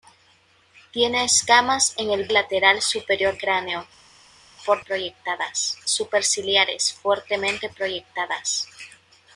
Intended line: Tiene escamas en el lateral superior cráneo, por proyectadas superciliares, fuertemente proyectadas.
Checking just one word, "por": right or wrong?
right